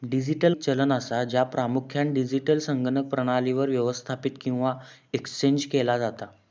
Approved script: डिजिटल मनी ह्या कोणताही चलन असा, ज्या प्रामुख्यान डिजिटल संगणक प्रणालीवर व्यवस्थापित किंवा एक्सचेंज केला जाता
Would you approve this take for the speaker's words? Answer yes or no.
no